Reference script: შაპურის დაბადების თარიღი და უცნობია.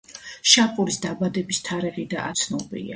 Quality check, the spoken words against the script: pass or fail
pass